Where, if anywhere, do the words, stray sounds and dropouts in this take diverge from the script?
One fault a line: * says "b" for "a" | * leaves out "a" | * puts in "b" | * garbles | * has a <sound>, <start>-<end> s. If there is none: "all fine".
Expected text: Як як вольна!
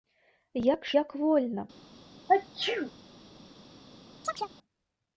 * has a sneeze, 2.3-2.9 s
* has a chirp, 4.2-4.5 s